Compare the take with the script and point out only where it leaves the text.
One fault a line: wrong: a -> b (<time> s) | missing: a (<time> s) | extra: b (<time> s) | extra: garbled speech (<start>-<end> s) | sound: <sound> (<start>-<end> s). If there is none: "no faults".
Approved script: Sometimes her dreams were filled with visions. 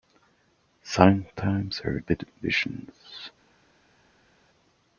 missing: dreams were filled (2.0 s)